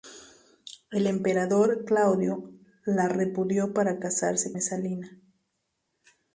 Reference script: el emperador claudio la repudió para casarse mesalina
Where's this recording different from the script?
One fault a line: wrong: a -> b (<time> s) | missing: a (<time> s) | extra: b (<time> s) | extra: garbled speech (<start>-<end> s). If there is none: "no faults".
no faults